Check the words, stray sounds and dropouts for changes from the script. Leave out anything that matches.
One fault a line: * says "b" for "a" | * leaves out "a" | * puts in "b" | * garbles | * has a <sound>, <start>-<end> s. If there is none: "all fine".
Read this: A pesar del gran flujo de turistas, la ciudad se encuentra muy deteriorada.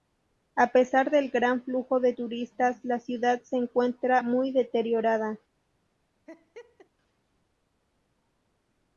* has a laugh, 6.3-6.9 s